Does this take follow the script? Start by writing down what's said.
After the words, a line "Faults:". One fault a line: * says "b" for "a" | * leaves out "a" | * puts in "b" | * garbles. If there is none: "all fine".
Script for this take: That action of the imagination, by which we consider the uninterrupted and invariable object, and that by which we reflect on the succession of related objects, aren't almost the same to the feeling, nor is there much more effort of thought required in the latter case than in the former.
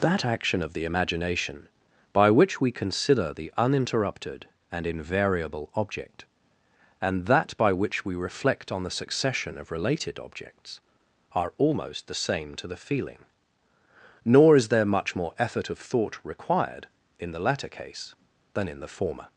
That action of the imagination, by which we consider the uninterrupted and invariable object, and that by which we reflect on the succession of related objects, are almost the same to the feeling, nor is there much more effort of thought required in the latter case than in the former.
Faults:
* says "are" for "aren't"